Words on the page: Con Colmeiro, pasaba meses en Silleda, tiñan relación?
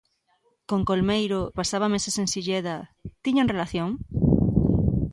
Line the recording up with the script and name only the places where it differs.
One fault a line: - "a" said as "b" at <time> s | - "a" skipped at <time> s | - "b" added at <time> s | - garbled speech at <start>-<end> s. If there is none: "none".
none